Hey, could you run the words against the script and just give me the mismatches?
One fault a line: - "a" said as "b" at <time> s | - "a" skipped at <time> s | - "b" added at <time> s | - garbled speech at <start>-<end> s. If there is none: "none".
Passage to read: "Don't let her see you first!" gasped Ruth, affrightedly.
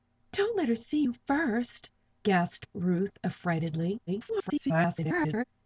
- garbled speech at 4.1-5.4 s